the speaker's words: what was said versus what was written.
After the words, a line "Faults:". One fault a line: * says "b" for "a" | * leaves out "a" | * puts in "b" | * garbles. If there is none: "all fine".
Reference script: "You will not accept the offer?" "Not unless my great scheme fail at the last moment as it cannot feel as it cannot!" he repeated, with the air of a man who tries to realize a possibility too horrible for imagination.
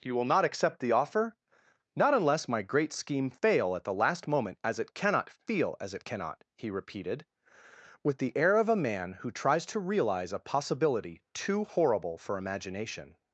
"You will not accept the offer?" "Not unless my great scheme fail at the last moment as it cannot feel as it cannot!" he repeated, with the air of a man who tries to realize a possibility too horrible for imagination.
Faults:
all fine